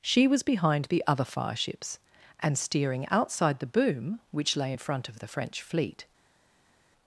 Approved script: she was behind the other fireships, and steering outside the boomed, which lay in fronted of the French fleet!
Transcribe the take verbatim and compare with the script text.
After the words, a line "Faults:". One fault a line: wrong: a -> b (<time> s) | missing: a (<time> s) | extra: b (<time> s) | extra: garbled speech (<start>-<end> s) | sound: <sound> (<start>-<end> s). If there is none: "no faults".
she was behind the other fireships, and steering outside the boom, which lay in front of the French fleet!
Faults:
wrong: boomed -> boom (3.7 s)
wrong: fronted -> front (4.8 s)